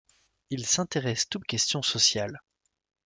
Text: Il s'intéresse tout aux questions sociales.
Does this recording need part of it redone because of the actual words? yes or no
no